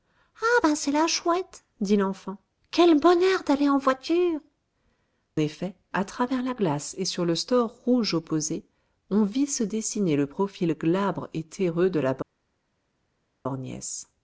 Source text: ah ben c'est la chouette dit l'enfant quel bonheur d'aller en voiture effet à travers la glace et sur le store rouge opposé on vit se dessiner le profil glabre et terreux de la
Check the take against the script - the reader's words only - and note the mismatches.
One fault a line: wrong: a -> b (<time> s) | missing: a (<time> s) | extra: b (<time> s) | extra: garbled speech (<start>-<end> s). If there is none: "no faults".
no faults